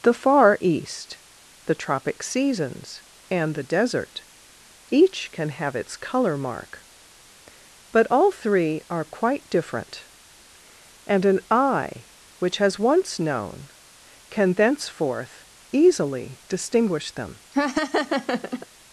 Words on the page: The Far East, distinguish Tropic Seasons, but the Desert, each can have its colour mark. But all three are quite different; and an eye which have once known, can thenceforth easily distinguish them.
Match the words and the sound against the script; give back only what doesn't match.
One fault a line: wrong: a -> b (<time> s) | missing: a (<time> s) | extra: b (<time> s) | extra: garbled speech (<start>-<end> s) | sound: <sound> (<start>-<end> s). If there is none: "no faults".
wrong: distinguish -> the (1.6 s)
wrong: but -> and (3.3 s)
wrong: have -> has (12.6 s)
sound: laugh (17.5-18.7 s)